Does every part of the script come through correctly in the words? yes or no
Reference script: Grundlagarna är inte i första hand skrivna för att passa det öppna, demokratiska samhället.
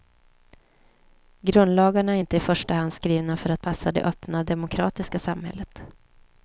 yes